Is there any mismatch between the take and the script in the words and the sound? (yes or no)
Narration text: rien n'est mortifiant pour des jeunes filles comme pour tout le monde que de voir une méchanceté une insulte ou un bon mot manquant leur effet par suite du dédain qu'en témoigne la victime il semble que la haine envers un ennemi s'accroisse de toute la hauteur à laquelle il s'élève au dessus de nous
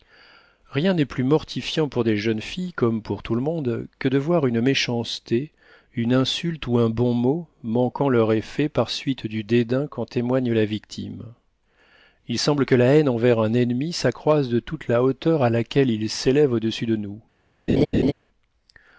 yes